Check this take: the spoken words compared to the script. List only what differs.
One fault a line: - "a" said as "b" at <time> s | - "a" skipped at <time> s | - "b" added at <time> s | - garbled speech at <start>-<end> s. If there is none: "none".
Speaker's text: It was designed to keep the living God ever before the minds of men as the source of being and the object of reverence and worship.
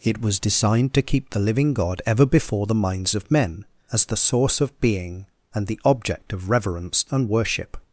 none